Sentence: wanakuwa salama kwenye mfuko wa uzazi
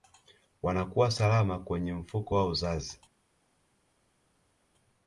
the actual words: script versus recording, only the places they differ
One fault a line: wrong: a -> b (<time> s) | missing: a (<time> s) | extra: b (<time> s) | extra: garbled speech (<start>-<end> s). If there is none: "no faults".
no faults